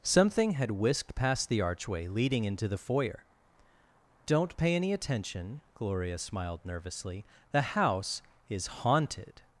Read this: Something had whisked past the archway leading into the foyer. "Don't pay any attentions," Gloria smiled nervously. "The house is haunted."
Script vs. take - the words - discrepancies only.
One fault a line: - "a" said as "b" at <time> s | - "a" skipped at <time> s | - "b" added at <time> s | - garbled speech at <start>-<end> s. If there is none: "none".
- "attentions" said as "attention" at 4.9 s